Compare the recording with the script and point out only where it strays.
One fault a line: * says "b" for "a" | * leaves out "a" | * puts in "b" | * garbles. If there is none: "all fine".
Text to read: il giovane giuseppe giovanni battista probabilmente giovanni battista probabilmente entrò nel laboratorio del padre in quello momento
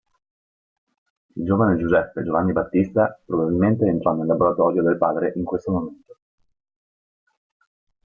* leaves out "giovanni battista probabilmente"
* says "questo" for "quello"